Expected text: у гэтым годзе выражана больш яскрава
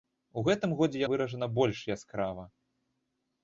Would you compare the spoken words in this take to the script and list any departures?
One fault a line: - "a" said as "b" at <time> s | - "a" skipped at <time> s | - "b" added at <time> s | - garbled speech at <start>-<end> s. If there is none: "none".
none